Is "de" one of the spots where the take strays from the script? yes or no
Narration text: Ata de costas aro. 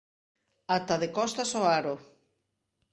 no